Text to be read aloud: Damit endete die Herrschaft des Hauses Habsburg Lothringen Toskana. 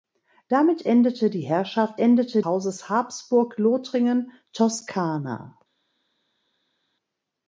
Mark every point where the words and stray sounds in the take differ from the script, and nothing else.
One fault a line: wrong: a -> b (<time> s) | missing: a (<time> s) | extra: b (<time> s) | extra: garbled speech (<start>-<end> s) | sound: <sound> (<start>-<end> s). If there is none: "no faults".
wrong: des -> endete (2.0 s)